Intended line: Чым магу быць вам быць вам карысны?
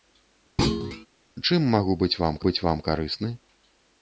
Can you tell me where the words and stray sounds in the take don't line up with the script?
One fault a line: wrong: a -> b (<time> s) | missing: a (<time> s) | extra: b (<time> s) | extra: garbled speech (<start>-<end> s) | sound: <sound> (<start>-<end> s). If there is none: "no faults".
sound: thud (0.6-1.1 s)